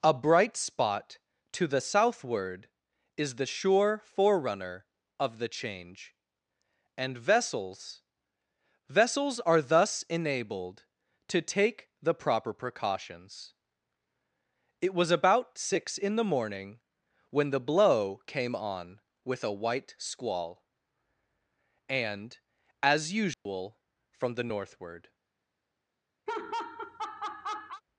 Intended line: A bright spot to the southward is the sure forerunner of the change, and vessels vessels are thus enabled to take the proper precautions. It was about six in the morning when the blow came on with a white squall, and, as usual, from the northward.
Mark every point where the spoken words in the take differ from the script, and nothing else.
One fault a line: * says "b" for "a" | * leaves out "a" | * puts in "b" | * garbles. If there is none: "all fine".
all fine